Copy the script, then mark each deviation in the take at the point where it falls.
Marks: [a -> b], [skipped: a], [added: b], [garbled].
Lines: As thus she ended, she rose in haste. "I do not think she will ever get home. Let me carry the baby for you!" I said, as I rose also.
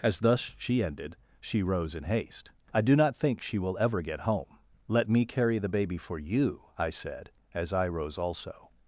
As thus she ended, she rose in haste. "I do not think she will ever get home. Let me carry the baby for you!" I said, as I rose also.